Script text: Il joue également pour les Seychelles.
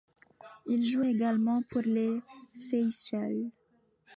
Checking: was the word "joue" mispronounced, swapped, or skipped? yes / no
no